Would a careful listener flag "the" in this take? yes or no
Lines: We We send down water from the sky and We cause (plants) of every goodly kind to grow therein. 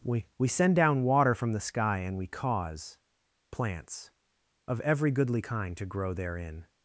no